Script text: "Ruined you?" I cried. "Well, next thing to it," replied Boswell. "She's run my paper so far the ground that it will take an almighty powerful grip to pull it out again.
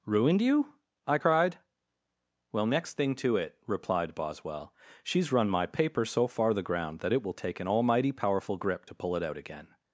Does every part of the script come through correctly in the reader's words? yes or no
yes